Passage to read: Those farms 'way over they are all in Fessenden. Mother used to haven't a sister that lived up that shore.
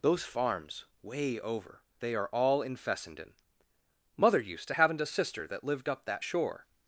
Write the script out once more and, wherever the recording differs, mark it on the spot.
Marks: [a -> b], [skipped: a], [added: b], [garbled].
Those farms 'way over they are all in Fessenden. Mother used to haven't a sister that lived up that shore.